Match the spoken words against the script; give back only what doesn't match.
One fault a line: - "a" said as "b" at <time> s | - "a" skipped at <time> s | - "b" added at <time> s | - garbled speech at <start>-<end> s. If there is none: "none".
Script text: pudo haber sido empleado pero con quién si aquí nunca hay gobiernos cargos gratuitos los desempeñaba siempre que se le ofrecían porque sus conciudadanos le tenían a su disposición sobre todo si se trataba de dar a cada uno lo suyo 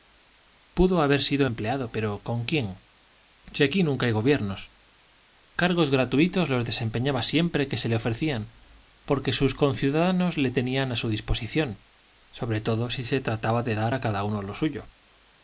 none